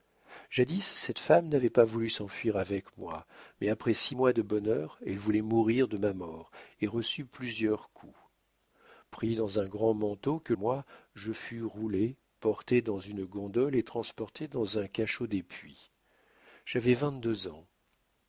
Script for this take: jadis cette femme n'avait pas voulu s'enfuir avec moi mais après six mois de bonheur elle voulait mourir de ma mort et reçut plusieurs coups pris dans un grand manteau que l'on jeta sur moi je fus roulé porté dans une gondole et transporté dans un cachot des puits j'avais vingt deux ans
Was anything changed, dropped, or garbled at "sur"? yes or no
yes